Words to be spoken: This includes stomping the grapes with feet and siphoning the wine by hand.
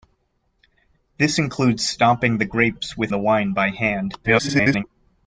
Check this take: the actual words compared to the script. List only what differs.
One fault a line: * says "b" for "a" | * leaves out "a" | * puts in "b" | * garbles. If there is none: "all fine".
* leaves out "feet and siphoning"
* garbles